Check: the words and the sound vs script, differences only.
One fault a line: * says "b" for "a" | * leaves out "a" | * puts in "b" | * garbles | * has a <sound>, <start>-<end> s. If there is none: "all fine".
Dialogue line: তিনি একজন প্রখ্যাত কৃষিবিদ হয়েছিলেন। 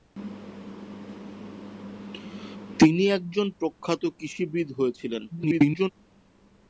* garbles